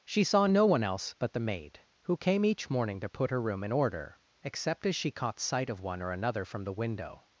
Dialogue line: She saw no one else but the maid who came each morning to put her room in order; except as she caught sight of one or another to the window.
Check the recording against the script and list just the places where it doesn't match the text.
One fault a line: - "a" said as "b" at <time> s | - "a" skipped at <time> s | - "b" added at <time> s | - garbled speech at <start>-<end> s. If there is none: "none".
- "to" said as "from" at 6.4 s